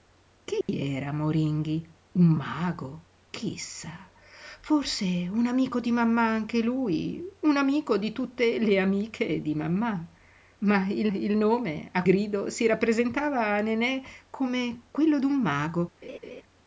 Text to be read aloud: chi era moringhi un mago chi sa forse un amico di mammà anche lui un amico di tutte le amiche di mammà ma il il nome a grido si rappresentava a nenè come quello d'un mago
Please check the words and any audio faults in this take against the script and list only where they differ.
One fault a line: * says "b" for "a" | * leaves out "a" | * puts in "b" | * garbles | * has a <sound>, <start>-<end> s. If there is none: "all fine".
* has a dropout, 0.6-0.7 s
* has a laugh, 16.0-16.4 s